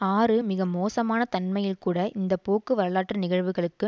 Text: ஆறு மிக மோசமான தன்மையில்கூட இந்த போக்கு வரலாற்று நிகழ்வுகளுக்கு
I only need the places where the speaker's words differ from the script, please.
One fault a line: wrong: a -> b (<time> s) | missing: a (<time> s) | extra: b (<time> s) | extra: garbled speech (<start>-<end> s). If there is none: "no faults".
no faults